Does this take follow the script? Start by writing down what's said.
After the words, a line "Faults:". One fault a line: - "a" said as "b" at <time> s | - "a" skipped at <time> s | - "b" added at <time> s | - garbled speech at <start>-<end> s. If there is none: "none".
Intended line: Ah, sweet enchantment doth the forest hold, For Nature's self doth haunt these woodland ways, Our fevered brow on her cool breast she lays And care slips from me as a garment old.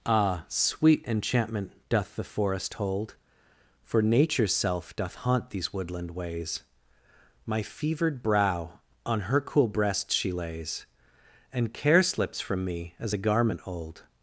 Ah, sweet enchantment doth the forest hold, For Nature's self doth haunt these woodland ways, My fevered brow on her cool breast she lays And care slips from me as a garment old.
Faults:
- "Our" said as "My" at 7.5 s